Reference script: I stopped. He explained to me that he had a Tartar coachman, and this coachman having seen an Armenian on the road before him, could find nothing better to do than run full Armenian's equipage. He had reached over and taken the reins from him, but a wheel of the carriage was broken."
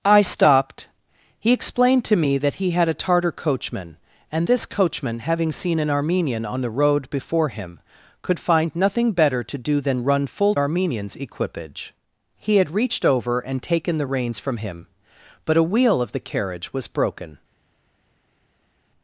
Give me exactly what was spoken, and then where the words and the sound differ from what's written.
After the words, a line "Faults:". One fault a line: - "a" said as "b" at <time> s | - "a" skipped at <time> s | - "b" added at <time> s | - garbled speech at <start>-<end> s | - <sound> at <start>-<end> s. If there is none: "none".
I stopped. He explained to me that he had a Tartar coachman, and this coachman having seen an Armenian on the road before him, could find nothing better to do than run full Armenian's equipage. He had reached over and taken the reins from him, but a wheel of the carriage was broken."
Faults:
none